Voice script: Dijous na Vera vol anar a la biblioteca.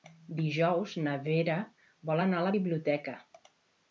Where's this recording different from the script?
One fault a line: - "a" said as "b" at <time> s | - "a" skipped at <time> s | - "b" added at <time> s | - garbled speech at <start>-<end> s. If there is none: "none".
none